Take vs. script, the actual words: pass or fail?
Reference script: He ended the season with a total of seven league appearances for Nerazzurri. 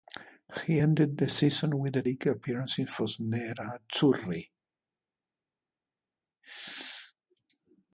fail